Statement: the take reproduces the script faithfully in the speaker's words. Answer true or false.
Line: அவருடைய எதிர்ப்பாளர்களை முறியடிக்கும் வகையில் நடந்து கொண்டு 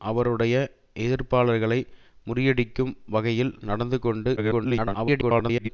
false